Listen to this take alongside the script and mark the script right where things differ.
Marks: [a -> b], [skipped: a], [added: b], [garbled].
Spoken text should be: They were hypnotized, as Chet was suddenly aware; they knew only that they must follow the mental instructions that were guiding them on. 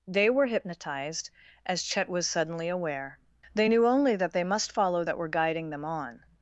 They were hypnotized, as Chet was suddenly aware; they knew only that they must follow [skipped: the mental instructions] that were guiding them on.